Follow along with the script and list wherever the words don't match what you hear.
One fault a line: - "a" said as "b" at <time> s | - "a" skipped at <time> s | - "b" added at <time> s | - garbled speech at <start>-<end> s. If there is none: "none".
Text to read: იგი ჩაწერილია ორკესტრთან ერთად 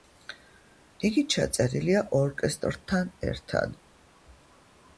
none